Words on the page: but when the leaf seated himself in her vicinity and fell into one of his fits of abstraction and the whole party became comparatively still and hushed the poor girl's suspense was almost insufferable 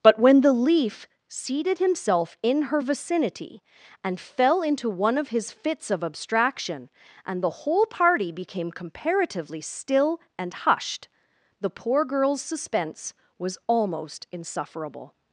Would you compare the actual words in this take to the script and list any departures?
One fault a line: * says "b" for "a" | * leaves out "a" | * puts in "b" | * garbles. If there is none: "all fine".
all fine